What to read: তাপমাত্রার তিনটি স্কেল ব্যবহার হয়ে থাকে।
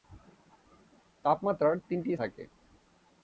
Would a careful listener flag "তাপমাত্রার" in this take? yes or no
no